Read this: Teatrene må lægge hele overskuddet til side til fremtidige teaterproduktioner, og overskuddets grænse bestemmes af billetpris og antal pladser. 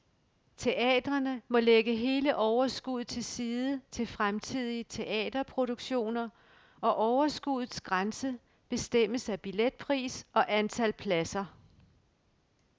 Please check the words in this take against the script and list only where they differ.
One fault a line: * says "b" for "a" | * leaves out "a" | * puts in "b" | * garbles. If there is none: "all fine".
all fine